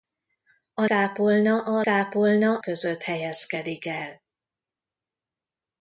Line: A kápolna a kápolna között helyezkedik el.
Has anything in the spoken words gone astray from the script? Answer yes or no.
no